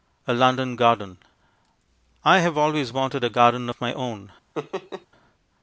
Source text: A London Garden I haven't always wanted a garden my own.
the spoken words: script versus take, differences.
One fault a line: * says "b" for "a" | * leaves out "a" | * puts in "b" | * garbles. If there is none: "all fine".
* says "have" for "haven't"
* puts in "of"